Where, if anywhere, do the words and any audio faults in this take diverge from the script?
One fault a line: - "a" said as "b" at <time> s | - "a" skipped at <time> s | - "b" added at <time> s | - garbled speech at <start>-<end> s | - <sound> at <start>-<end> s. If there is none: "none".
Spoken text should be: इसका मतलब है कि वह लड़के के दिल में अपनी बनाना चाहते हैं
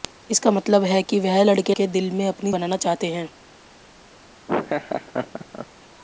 - laugh at 4.5-5.7 s